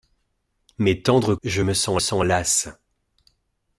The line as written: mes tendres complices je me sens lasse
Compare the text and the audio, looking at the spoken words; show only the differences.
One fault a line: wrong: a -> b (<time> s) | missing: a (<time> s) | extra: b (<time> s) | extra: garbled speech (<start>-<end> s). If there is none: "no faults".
missing: complices (1.4 s)
extra: sens (2.0 s)